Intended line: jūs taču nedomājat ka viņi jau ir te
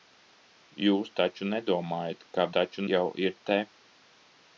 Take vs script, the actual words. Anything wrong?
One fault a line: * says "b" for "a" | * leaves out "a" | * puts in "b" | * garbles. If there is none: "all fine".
* says "taču" for "viņi"